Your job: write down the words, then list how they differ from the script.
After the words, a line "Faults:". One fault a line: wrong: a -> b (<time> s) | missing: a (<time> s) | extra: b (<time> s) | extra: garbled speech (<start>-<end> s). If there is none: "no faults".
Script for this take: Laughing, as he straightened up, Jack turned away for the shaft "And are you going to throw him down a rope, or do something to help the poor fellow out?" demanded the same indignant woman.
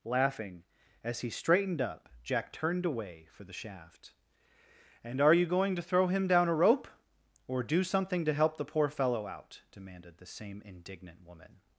Laughing, as he straightened up, Jack turned away for the shaft "And are you going to throw him down a rope, or do something to help the poor fellow out?" demanded the same indignant woman.
Faults:
no faults